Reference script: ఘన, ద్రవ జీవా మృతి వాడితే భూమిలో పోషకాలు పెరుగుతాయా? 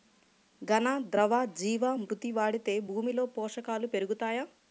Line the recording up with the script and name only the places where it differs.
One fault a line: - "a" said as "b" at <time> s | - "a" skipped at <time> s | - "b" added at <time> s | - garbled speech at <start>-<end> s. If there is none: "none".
none